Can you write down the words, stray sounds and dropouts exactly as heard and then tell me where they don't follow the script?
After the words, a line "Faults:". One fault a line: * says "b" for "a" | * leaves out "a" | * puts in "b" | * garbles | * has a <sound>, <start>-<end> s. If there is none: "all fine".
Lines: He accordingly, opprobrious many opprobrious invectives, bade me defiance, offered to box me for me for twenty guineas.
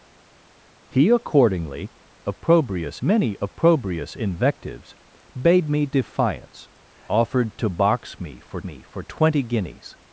He accordingly, opprobrious many opprobrious invectives, bade me defiance, offered to box me for me for twenty guineas.
Faults:
all fine